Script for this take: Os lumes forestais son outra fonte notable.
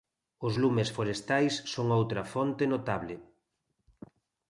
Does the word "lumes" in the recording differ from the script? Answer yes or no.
no